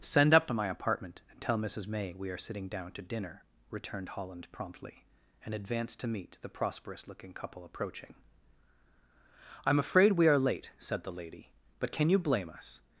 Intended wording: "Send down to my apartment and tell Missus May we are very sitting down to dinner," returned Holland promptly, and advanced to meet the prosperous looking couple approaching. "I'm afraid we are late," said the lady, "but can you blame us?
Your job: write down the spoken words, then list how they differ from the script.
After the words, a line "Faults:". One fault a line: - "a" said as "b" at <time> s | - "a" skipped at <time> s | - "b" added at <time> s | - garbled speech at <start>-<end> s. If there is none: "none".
"Send up to my apartment and tell Missus May we are sitting down to dinner," returned Holland promptly, and advanced to meet the prosperous looking couple approaching. "I'm afraid we are late," said the lady, "but can you blame us?
Faults:
- "down" said as "up" at 0.3 s
- "very" skipped at 2.4 s